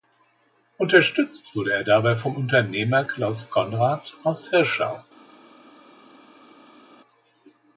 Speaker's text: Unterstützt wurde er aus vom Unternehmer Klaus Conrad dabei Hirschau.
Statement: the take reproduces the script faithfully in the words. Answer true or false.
false